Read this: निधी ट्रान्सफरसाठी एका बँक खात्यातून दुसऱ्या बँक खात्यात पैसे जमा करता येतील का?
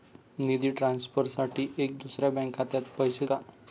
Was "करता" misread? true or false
true